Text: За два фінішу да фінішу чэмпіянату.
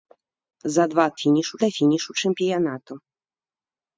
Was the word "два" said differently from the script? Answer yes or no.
no